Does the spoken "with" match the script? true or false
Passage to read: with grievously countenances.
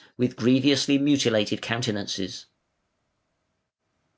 true